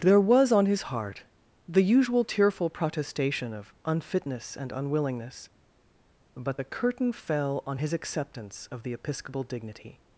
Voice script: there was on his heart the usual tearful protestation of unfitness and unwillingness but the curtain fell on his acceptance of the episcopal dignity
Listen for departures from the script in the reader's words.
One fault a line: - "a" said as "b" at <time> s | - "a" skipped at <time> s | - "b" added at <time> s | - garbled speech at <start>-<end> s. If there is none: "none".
none